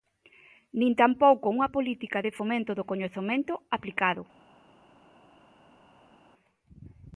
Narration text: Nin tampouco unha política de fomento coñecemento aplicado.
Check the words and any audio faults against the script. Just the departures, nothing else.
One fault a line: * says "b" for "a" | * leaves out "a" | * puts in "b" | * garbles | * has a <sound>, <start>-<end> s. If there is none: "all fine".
* puts in "do"